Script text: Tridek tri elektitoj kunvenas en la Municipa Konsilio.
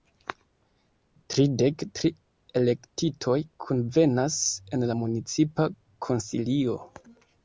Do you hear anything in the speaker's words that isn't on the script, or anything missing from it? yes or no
no